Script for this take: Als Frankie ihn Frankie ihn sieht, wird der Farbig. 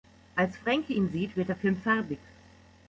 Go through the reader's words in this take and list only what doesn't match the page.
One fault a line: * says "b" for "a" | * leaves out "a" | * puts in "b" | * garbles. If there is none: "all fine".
* leaves out "Frankie ihn"
* puts in "Film"